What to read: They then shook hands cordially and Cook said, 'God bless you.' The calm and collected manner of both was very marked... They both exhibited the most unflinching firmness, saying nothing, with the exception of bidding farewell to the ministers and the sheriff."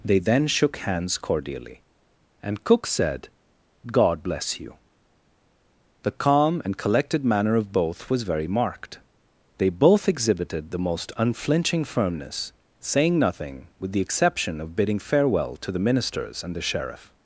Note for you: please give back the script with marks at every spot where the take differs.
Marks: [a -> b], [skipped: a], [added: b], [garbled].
They then shook hands cordially and Cook said, 'God bless you.' The calm and collected manner of both was very marked... They both exhibited the most unflinching firmness, saying nothing, with the exception of bidding farewell to the ministers and the sheriff."